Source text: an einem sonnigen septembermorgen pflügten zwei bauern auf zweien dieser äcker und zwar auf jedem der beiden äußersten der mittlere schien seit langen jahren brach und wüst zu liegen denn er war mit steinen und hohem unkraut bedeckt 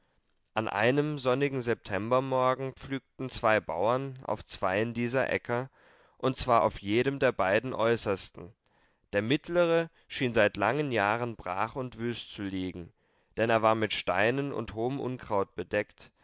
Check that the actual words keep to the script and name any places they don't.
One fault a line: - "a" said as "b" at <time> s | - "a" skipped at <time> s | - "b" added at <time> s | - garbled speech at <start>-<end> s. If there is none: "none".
none